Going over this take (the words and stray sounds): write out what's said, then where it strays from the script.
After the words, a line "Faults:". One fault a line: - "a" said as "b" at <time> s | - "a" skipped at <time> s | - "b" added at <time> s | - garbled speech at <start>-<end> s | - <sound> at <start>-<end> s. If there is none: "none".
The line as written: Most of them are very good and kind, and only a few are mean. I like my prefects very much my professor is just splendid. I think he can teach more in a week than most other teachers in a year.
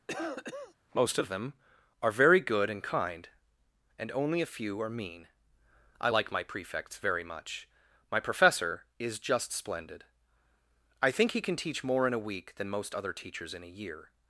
Most of them are very good and kind, and only a few are mean. I like my prefects very much my professor is just splendid. I think he can teach more in a week than most other teachers in a year.
Faults:
- cough at 0.1-0.7 s